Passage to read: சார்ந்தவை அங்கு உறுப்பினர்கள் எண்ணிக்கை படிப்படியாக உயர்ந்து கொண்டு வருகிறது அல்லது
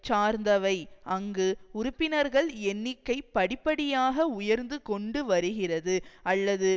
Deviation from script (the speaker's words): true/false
false